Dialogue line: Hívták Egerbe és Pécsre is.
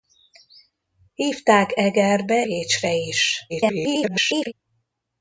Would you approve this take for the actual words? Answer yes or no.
no